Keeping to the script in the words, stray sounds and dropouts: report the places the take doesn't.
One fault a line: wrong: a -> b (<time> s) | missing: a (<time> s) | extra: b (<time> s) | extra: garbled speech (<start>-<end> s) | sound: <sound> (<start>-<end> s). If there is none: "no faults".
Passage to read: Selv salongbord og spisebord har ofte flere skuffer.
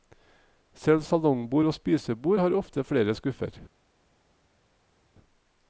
no faults